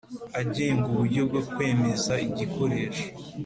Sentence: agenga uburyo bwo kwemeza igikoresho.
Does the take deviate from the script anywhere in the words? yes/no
no